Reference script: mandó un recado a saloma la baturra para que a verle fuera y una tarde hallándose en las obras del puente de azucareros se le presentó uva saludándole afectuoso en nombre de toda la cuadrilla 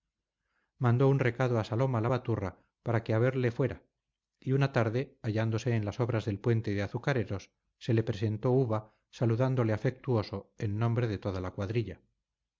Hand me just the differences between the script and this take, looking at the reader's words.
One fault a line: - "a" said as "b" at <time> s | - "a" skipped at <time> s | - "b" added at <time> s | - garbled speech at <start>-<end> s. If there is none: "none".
none